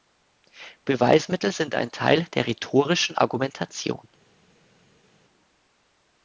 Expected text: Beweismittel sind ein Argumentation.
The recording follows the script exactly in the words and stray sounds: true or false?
false